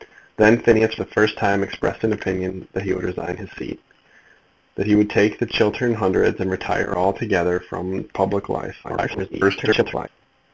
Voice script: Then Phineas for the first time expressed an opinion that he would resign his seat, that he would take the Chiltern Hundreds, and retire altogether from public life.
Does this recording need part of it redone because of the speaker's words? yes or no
yes